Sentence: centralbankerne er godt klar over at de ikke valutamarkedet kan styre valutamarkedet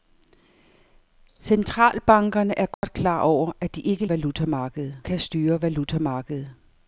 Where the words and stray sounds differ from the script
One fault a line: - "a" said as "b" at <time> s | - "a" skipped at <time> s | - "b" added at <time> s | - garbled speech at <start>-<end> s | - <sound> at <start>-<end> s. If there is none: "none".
- dropout at 2.7-2.8 s